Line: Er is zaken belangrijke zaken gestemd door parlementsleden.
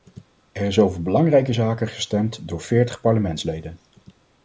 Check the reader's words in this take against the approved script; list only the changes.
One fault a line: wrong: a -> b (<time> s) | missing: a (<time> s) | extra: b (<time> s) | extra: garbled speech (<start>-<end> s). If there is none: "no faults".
wrong: zaken -> over (0.8 s)
extra: veertig (2.6 s)